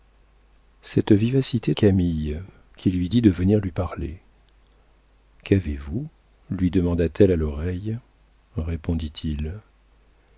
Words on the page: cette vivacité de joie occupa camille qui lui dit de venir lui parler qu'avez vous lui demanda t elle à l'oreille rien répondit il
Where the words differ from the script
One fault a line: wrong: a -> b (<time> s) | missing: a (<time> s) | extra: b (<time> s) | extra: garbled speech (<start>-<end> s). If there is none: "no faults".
missing: de joie occupa (1.8 s)
missing: rien (8.0 s)